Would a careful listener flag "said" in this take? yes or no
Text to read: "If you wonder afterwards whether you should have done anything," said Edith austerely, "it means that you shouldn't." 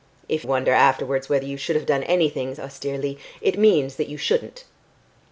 yes